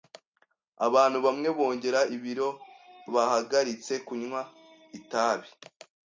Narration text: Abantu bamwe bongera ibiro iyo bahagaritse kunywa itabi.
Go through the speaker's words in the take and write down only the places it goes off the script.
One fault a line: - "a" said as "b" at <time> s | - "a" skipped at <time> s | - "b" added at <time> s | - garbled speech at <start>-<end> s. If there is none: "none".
- "iyo" skipped at 2.5 s